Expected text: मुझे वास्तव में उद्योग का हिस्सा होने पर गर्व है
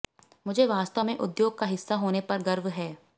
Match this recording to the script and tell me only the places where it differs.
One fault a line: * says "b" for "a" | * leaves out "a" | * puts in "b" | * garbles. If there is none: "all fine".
all fine